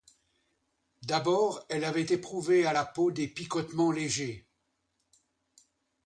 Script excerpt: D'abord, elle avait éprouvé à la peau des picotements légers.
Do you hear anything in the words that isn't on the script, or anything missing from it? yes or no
no